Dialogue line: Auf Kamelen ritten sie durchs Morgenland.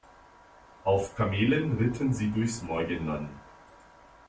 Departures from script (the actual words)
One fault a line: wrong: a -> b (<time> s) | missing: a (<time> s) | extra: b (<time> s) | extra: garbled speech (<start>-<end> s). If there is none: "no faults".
no faults